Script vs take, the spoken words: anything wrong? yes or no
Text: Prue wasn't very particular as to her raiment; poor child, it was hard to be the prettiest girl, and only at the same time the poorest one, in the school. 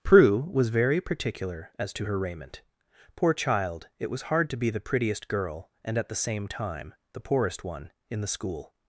yes